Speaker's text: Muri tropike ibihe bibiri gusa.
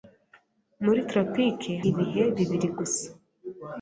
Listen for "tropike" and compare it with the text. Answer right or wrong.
right